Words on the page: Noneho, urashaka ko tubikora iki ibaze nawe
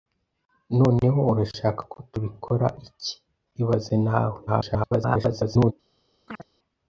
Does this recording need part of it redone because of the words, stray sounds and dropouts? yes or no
yes